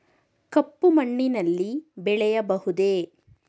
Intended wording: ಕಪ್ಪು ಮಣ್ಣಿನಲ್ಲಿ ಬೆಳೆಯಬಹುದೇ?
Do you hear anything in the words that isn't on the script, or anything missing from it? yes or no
no